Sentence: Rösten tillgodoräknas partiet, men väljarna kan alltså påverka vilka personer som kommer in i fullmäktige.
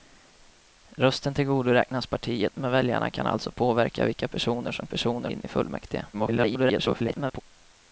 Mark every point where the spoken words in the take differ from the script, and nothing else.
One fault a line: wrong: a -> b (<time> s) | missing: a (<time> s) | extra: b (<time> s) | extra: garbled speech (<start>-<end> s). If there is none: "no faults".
wrong: kommer -> personer (4.9 s)
extra: garbled speech (6.1-7.4 s)